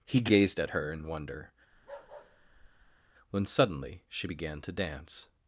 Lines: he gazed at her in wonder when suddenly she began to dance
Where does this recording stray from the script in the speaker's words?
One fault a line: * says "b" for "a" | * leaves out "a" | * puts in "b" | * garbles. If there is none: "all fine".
all fine